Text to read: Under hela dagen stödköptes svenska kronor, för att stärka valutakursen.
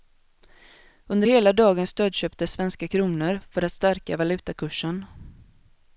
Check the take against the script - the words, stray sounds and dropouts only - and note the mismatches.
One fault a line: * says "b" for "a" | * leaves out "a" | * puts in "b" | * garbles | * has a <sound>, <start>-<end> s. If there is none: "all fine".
all fine